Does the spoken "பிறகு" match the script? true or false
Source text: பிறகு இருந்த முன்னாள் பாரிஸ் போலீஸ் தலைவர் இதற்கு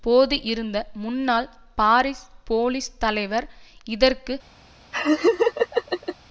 false